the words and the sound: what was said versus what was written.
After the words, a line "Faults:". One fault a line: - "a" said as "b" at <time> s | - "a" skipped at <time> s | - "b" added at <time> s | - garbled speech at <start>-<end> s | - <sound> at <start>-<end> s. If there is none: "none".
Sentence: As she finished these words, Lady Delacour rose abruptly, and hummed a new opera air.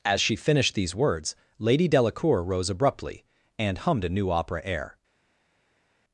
As she finished these words, Lady Delacour rose abruptly, and hummed a new opera air.
Faults:
none